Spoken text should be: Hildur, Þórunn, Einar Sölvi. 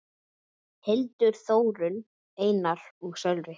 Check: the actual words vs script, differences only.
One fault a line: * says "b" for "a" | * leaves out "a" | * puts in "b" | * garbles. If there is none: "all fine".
* puts in "og"